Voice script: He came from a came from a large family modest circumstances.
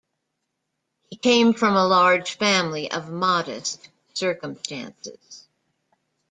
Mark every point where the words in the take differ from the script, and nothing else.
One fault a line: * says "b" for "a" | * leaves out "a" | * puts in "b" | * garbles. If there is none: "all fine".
* leaves out "came from a"
* puts in "of"